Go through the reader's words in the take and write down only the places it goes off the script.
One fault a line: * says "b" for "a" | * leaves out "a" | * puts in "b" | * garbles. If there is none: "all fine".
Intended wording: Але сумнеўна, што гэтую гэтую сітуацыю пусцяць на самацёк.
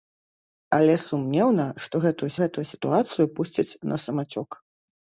all fine